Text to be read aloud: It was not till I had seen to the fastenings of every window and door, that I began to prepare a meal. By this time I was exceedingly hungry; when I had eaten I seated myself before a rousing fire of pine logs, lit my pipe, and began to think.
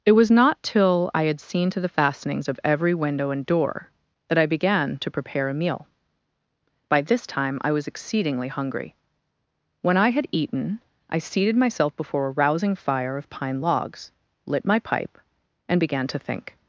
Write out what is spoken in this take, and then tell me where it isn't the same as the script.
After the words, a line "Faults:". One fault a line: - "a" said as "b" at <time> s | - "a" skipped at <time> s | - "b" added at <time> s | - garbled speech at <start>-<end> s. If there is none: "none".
It was not till I had seen to the fastenings of every window and door, that I began to prepare a meal. By this time I was exceedingly hungry; when I had eaten I seated myself before a rousing fire of pine logs, lit my pipe, and began to think.
Faults:
none